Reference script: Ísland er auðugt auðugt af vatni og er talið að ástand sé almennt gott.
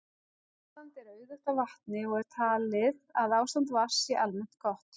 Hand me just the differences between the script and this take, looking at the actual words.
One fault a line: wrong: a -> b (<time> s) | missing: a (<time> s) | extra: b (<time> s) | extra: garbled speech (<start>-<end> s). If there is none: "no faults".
missing: auðugt (1.5 s)
extra: vatns (3.8 s)